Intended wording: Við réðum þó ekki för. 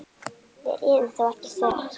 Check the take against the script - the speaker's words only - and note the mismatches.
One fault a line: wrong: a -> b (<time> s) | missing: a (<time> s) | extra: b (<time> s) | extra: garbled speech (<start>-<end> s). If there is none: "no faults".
no faults